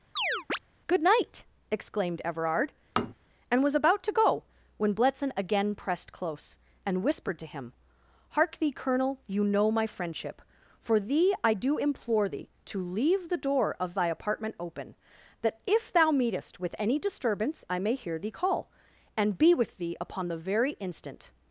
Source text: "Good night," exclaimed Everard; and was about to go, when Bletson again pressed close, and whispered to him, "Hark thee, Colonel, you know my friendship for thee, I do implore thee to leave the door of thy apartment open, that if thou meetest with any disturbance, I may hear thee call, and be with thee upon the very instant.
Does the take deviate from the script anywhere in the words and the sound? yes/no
yes